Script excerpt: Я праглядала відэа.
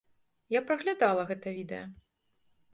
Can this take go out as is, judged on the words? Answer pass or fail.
fail